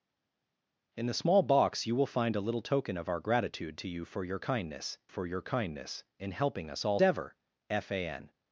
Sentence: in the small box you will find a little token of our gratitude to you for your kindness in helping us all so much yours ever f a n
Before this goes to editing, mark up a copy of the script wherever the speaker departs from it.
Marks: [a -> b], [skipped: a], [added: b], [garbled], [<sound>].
in the small box you will find a little token of our gratitude to you for your kindness [added: for your kindness] in helping us all [skipped: so much yours] ever f a n